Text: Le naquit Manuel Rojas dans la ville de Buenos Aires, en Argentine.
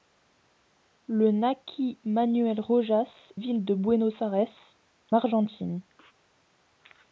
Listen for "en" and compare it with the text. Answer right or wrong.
wrong